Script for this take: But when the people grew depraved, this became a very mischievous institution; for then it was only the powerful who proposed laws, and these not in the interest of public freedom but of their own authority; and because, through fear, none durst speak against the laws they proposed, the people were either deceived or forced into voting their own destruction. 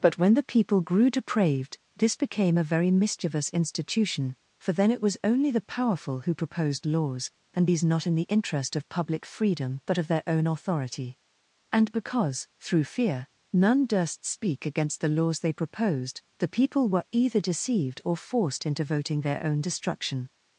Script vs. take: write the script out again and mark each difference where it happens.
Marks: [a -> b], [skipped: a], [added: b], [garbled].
But when the people grew depraved, this became a very mischievous institution; for then it was only the powerful who proposed laws, and these not in the interest of public freedom but of their own authority; and because, through fear, none durst speak against the laws they proposed, the people were either deceived or forced into voting their own destruction.